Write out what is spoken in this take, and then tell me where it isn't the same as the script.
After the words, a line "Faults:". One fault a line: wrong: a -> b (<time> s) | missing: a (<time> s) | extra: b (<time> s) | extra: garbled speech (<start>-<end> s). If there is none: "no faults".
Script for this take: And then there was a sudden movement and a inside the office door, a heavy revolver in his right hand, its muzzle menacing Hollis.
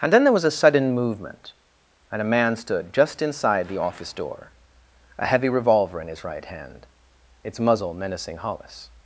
And then there was a sudden movement and a man stood just inside the office door, a heavy revolver in his right hand, its muzzle menacing Hollis.
Faults:
extra: man stood just (2.2 s)